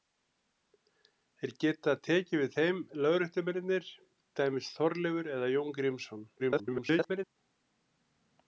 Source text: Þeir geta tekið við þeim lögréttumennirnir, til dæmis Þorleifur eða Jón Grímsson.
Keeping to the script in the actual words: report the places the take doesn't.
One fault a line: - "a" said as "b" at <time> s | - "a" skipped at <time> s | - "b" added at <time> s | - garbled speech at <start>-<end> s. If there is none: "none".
- "til" skipped at 3.9 s
- garbled speech at 6.4-7.4 s